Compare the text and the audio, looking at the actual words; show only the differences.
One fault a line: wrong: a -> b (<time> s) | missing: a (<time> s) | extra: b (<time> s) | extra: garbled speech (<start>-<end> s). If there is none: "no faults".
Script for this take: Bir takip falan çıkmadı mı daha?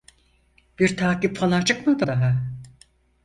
missing: mı (2.1 s)